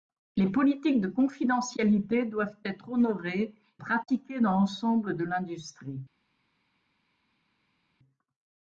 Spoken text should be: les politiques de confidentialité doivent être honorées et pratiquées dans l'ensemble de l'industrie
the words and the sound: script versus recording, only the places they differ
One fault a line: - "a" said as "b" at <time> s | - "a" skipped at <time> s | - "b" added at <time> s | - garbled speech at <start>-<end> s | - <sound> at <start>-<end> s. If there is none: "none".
- "et" skipped at 3.5 s